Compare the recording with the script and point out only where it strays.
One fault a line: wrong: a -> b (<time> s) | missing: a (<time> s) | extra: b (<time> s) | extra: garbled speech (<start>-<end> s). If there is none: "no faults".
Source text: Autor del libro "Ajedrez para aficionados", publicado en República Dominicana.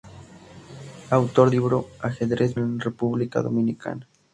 missing: del (1.5 s)
missing: para aficionados publicado (2.5 s)